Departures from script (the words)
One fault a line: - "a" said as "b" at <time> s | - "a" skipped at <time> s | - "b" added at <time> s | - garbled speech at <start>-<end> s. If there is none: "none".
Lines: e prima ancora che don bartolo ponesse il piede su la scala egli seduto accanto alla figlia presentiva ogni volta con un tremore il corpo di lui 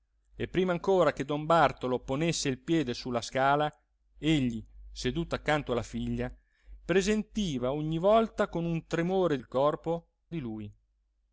none